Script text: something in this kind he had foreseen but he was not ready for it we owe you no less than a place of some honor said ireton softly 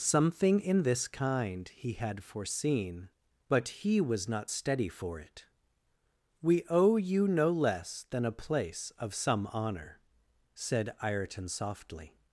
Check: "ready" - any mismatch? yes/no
yes